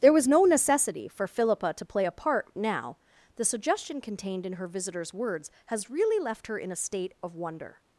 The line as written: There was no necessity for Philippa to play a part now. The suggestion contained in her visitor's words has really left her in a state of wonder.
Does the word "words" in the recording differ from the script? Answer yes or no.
no